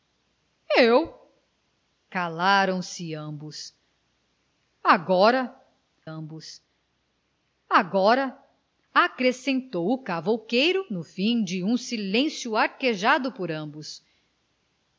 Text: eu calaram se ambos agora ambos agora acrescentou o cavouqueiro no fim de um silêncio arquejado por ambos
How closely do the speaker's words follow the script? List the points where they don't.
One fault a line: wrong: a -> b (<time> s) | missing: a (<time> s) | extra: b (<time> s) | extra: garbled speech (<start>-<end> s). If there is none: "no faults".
no faults